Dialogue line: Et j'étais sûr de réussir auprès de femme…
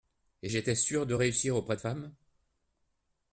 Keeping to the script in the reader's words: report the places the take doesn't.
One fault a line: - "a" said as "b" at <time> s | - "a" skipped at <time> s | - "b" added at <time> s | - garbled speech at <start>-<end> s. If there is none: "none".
none